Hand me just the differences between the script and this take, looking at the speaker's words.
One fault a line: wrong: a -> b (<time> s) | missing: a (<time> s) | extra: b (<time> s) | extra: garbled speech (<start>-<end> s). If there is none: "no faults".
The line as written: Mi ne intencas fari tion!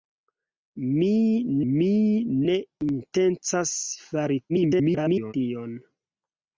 extra: mi (1.7 s)
extra: garbled speech (4.5-5.3 s)